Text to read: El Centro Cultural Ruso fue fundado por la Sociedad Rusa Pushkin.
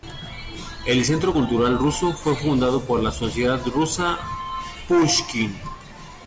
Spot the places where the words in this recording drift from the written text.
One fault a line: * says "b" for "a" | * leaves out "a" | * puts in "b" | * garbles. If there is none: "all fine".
all fine